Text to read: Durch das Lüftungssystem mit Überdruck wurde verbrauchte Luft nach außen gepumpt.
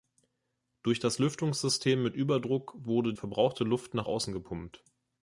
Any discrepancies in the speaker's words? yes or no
no